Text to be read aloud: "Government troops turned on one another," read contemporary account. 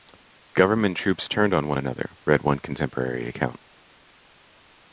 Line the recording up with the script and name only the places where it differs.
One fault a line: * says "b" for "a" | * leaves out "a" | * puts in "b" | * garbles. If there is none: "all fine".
* puts in "one"